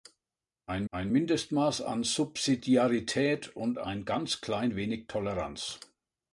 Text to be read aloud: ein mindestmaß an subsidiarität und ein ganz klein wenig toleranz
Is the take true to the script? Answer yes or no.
no